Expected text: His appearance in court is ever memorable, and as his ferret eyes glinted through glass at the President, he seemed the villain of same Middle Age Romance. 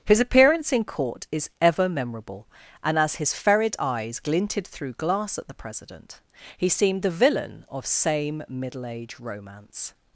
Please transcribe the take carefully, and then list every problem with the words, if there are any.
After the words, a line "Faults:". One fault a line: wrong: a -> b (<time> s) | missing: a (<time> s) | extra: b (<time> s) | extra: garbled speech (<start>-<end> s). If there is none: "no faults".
His appearance in court is ever memorable, and as his ferret eyes glinted through glass at the President, he seemed the villain of same Middle Age Romance.
Faults:
no faults